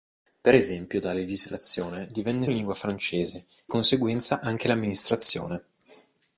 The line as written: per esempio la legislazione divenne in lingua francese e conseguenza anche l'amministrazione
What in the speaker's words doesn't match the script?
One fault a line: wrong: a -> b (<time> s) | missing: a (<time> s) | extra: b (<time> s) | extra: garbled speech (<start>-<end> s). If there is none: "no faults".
no faults